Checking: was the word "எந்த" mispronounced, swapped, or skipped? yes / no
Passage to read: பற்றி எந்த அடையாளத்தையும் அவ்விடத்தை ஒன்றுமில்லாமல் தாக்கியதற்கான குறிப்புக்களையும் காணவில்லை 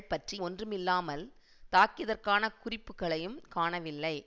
yes